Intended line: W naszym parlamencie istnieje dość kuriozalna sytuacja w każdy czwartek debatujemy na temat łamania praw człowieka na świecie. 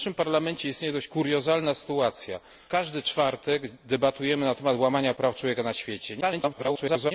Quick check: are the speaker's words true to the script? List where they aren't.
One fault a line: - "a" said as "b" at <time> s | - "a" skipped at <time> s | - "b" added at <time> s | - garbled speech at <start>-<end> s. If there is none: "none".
- "w" skipped at 2.4 s
- garbled speech at 6.2-7.1 s